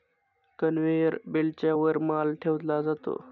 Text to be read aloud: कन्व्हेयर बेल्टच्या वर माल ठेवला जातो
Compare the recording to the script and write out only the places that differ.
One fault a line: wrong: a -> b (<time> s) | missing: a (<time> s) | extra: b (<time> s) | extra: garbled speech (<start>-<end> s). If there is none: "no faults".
no faults